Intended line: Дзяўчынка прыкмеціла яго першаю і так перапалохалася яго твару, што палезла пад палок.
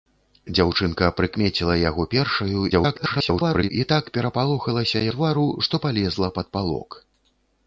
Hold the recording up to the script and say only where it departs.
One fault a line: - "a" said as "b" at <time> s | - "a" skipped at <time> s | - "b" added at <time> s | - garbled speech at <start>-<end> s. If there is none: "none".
- garbled speech at 2.7-3.7 s
- "яго" skipped at 5.0 s